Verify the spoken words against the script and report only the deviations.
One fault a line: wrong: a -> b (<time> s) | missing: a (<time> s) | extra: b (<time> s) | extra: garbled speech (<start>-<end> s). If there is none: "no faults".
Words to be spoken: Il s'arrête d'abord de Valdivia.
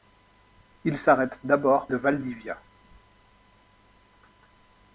no faults